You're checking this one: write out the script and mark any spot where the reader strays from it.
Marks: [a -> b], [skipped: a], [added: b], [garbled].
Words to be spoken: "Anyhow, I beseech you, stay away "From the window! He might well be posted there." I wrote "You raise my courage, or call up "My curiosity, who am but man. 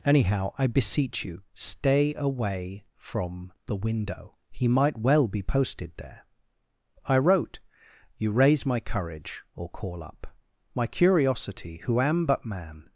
"Anyhow, I beseech you, stay away "From the window! He might well be posted there." I wrote "You raise my courage, or call up "My curiosity, who am but man.